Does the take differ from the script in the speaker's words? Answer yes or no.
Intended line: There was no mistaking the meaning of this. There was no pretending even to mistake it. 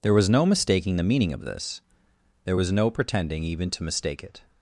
no